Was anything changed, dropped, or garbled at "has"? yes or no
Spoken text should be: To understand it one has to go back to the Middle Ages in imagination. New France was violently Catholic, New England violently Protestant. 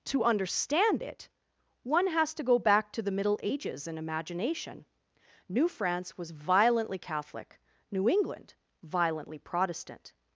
no